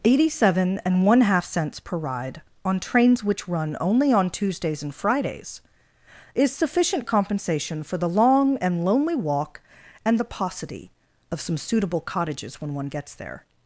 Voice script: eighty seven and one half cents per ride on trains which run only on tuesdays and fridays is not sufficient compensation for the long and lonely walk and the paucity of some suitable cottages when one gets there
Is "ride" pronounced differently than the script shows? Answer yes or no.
no